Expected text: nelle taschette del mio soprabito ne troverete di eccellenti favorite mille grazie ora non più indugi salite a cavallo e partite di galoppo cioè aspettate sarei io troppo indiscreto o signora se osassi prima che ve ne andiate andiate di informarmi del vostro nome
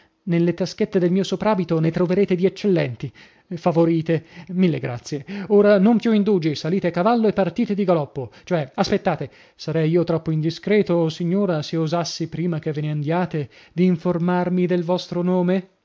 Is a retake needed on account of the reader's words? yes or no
yes